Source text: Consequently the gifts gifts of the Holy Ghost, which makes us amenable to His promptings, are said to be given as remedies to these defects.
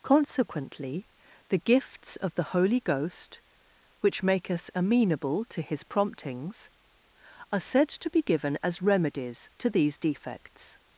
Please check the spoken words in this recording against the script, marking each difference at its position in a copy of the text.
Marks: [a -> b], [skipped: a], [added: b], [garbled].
Consequently the gifts [skipped: gifts] of the Holy Ghost, which [makes -> make] us amenable to His promptings, are said to be given as remedies to these defects.